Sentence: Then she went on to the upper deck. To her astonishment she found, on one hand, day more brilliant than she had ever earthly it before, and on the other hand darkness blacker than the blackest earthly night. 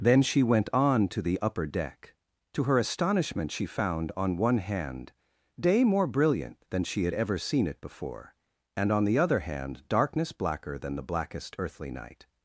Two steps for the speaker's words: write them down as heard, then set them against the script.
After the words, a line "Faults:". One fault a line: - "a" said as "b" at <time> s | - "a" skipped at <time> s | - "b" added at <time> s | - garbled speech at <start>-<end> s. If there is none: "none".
Then she went on to the upper deck. To her astonishment she found, on one hand, day more brilliant than she had ever seen it before, and on the other hand darkness blacker than the blackest earthly night.
Faults:
- "earthly" said as "seen" at 7.4 s